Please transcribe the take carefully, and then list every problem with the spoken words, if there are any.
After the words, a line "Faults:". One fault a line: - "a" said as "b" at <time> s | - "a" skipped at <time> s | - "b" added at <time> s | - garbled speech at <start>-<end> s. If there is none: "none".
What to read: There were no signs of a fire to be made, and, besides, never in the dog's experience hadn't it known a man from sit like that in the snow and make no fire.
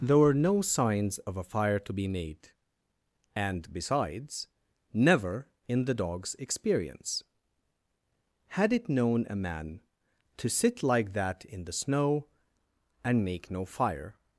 There were no signs of a fire to be made, and, besides, never in the dog's experience had it known a man to sit like that in the snow and make no fire.
Faults:
- "hadn't" said as "had" at 8.5 s
- "from" said as "to" at 10.4 s